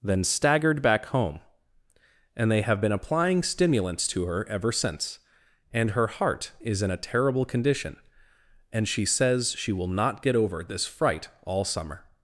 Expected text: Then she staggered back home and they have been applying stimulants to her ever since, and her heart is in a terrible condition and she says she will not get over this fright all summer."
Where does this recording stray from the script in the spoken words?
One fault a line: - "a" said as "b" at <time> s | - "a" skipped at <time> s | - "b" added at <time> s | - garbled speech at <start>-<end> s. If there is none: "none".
- "she" skipped at 0.2 s